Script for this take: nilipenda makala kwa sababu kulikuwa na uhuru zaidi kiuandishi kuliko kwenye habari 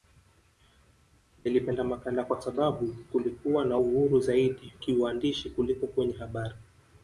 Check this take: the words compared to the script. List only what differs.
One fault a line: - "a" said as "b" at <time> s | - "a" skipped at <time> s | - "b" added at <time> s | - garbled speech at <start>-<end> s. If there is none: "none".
none